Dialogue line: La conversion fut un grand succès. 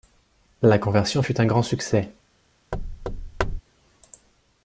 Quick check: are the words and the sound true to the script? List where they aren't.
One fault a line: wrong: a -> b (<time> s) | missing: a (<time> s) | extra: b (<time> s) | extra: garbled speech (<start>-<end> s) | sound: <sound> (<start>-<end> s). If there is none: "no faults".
sound: thud (2.7-3.6 s)